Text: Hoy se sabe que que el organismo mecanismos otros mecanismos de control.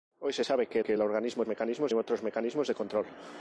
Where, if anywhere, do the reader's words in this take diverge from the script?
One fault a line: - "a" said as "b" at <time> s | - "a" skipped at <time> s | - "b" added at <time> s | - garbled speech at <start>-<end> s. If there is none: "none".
none